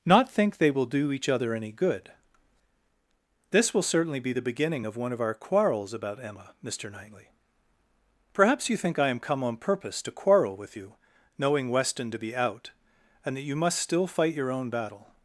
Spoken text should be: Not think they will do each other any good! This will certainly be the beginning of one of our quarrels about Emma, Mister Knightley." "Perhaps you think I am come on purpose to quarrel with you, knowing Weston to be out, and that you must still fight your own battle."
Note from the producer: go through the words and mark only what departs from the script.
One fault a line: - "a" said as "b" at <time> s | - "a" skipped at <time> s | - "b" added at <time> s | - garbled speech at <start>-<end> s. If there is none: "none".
none